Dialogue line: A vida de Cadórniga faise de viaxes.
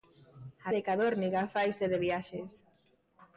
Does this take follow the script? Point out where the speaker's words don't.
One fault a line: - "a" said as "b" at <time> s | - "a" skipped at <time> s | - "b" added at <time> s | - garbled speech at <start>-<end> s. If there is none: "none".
- "vida" skipped at 0.7 s